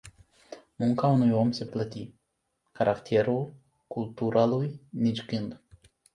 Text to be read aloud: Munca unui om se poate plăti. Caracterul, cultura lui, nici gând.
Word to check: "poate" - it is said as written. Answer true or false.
false